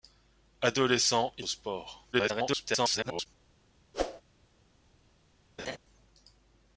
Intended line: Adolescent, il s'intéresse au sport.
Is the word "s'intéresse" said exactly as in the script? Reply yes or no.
no